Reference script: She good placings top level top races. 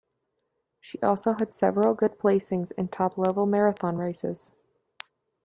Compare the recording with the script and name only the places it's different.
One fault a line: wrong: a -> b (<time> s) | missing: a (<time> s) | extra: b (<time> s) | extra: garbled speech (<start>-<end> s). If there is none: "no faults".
extra: also had several (1.0 s)
extra: in (2.8 s)
wrong: top -> marathon (3.5 s)